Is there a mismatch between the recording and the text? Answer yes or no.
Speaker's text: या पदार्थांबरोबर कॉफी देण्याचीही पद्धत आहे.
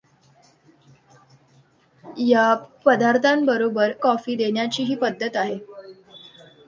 no